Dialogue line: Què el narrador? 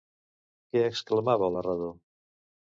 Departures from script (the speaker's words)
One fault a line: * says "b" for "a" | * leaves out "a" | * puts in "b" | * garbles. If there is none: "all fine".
* puts in "exclamava"